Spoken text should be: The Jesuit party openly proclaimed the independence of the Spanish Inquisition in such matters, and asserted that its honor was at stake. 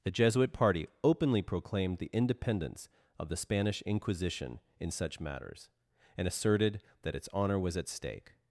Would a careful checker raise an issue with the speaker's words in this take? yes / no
no